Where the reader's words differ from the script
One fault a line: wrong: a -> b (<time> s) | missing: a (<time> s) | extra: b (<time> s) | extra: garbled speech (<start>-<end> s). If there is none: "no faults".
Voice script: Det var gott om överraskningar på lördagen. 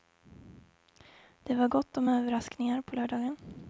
no faults